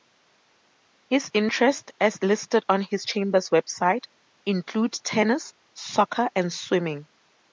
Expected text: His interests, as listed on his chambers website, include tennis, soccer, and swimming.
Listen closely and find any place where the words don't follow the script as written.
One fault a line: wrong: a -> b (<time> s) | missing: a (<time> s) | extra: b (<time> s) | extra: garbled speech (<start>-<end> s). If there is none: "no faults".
no faults